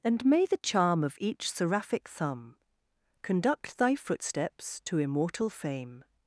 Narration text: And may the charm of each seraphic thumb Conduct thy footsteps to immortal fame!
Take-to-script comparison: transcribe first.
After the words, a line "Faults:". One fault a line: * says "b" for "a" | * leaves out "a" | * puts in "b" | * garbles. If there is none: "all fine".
And may the charm of each seraphic thumb Conduct thy footsteps to immortal fame!
Faults:
all fine